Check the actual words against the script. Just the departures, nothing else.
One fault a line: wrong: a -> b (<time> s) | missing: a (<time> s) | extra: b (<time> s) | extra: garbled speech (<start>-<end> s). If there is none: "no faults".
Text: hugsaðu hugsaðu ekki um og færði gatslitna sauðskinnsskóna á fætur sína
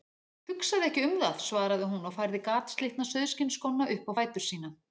missing: hugsaðu (0.8 s)
extra: það svaraði hún (1.2 s)
extra: upp (4.0 s)